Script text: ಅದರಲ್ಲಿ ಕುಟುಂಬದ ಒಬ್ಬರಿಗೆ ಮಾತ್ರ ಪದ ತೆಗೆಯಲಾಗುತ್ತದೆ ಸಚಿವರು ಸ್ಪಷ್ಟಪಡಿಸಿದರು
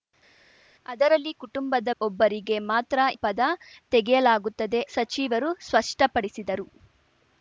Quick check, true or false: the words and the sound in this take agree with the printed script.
true